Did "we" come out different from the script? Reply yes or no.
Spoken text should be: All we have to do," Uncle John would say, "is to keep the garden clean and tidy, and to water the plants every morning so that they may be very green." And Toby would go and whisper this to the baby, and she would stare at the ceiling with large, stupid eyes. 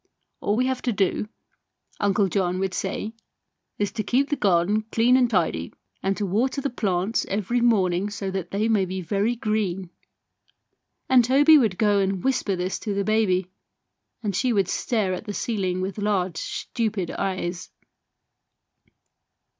no